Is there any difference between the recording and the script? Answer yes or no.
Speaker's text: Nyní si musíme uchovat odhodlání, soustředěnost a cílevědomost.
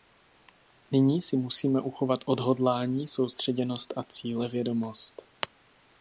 no